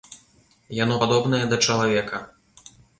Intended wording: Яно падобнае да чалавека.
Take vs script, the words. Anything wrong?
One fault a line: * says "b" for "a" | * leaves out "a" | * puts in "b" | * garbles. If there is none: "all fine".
all fine